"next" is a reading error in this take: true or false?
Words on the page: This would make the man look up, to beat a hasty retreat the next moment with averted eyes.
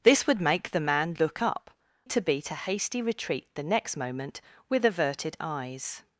false